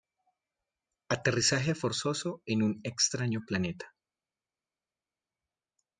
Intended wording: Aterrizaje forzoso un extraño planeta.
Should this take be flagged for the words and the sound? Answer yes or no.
yes